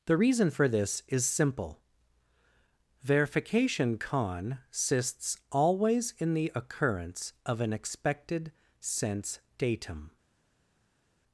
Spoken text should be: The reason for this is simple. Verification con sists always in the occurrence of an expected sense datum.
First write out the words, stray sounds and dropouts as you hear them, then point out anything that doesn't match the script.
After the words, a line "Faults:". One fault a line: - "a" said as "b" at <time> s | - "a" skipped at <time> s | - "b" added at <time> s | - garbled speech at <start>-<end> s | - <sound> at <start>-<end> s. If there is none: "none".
The reason for this is simple. Verification con sists always in the occurrence of an expected sense datum.
Faults:
none